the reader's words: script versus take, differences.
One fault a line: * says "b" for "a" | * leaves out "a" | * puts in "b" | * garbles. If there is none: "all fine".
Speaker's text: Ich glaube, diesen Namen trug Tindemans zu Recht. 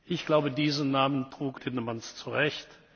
all fine